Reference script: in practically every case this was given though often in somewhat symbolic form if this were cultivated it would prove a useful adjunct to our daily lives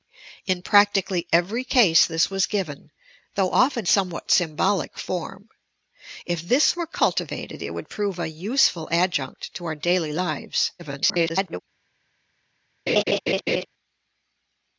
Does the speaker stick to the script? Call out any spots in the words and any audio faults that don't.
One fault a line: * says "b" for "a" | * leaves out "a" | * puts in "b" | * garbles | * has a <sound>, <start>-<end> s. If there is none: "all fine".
* leaves out "in"
* garbles
* has a laugh, 12.9-13.7 s